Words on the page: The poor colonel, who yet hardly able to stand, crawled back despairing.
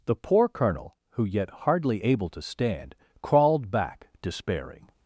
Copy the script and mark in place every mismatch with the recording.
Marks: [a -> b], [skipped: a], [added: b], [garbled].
The poor colonel, who yet hardly able to stand, crawled back despairing.